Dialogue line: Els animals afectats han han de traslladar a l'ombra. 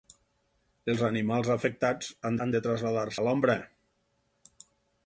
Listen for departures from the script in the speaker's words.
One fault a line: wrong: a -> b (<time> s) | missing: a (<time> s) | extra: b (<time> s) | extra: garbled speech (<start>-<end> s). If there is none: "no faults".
no faults